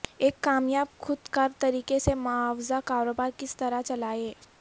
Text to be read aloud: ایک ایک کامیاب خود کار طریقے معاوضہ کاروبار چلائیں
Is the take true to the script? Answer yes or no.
no